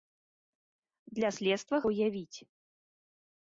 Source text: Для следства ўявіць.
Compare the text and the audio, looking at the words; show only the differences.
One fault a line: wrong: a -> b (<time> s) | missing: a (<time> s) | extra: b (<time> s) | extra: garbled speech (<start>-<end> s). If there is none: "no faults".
no faults